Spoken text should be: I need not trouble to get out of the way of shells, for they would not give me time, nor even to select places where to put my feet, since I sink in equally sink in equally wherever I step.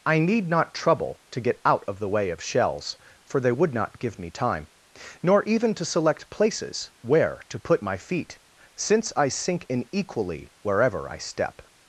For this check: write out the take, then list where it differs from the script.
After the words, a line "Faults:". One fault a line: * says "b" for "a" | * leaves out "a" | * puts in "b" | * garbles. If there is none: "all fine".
I need not trouble to get out of the way of shells, for they would not give me time, nor even to select places where to put my feet, since I sink in equally wherever I step.
Faults:
* leaves out "sink in equally"